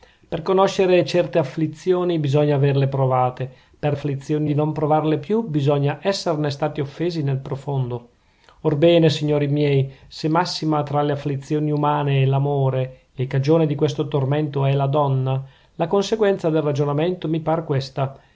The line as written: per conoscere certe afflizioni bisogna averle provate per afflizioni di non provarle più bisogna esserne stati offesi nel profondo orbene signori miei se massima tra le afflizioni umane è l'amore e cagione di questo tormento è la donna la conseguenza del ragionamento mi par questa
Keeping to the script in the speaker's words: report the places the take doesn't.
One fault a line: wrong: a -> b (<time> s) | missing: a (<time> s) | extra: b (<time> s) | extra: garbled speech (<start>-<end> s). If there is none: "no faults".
no faults